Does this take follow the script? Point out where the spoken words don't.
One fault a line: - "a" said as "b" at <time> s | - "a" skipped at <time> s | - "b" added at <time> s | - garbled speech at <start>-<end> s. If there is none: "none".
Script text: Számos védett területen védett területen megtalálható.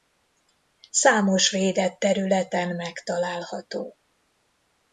- "védett területen" skipped at 2.8 s